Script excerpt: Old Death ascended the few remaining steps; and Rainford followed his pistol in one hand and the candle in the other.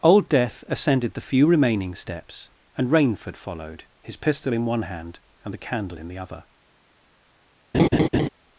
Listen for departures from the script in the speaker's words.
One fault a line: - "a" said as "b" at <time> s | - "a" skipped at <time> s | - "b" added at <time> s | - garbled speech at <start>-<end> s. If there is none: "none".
none